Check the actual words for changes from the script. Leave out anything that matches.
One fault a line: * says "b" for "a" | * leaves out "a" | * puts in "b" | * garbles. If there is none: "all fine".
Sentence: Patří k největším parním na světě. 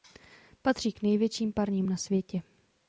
all fine